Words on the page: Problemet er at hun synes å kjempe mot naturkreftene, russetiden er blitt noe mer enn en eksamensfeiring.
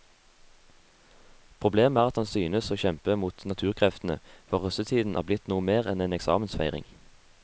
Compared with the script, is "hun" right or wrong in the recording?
wrong